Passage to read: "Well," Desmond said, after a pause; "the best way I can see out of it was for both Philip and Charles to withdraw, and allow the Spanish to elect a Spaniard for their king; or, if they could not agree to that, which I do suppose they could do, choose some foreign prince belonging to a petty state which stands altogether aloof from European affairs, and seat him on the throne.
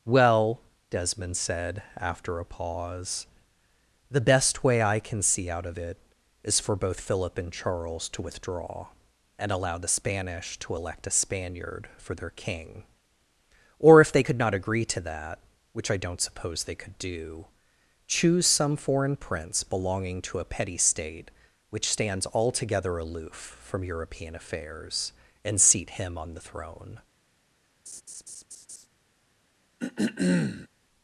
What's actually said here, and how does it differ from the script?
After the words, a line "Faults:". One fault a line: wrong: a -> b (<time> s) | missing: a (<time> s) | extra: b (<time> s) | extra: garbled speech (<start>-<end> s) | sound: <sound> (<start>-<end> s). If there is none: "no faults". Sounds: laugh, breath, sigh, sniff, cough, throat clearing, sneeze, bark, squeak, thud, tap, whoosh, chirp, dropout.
"Well," Desmond said, after a pause; "the best way I can see out of it is for both Philip and Charles to withdraw, and allow the Spanish to elect a Spaniard for their king; or, if they could not agree to that, which I don't suppose they could do, choose some foreign prince belonging to a petty state which stands altogether aloof from European affairs, and seat him on the throne.
Faults:
wrong: was -> is (6.4 s)
wrong: do -> don't (16.0 s)
sound: laugh (27.9-28.9 s)
sound: throat clearing (29.8-30.7 s)